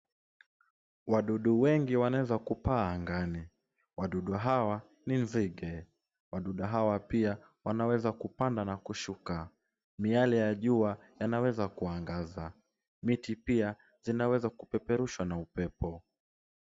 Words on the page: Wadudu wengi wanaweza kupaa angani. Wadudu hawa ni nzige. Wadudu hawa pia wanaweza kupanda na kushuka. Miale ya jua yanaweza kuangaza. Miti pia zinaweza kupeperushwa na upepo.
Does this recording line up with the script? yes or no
yes